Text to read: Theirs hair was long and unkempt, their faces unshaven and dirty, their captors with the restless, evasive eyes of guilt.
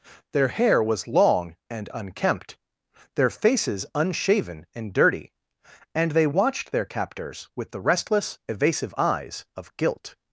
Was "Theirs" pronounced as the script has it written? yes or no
no